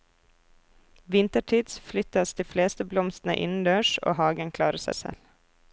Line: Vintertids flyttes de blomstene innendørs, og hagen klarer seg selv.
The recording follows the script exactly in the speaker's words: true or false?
false